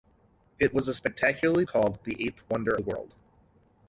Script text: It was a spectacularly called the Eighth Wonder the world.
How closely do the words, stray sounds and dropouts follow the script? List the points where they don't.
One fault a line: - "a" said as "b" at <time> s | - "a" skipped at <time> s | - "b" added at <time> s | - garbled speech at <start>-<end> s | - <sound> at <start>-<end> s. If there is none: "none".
none